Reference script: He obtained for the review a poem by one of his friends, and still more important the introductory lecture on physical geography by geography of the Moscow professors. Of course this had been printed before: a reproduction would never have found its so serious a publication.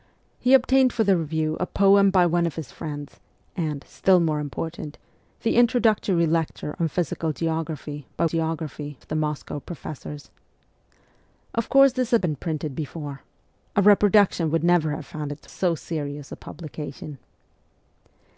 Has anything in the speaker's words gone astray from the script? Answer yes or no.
no